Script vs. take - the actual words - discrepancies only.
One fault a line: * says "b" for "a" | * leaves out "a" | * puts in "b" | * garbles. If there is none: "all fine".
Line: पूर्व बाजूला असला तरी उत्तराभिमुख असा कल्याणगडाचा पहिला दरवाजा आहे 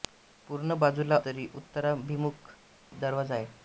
* leaves out "असला"
* leaves out "असा कल्याणगडाचा पहिला"